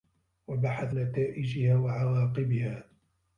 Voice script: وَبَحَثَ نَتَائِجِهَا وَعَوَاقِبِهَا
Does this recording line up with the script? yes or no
yes